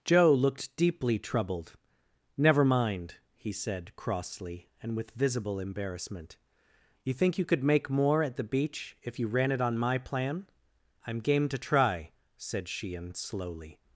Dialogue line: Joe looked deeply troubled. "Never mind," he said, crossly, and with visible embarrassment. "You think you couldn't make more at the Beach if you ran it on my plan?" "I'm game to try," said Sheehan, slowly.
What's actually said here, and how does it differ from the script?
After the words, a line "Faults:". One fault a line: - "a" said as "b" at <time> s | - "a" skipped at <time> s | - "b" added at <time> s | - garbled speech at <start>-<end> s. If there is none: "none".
Joe looked deeply troubled. "Never mind," he said, crossly, and with visible embarrassment. "You think you could make more at the Beach if you ran it on my plan?" "I'm game to try," said Sheehan, slowly.
Faults:
- "couldn't" said as "could" at 7.5 s